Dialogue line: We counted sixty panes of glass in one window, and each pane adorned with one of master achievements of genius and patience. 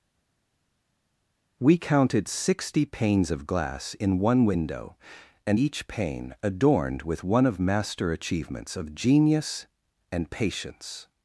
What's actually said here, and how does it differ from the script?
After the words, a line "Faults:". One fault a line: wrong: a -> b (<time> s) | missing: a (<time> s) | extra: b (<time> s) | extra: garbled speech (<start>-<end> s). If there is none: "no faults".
We counted sixty panes of glass in one window, and each pane adorned with one of master achievements of genius and patience.
Faults:
no faults